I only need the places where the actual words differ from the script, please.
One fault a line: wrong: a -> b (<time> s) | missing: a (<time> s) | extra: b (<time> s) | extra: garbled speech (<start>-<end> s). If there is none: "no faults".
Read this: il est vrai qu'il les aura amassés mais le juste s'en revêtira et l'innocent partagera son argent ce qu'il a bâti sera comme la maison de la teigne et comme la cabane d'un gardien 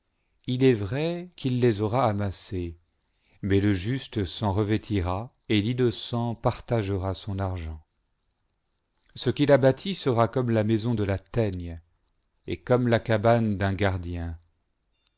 no faults